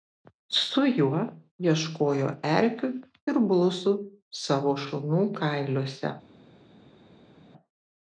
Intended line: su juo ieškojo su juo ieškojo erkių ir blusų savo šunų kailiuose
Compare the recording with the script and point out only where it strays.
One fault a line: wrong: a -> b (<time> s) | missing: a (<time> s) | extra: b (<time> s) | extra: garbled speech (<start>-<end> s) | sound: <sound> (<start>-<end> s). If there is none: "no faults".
missing: su juo ieškojo (2.3 s)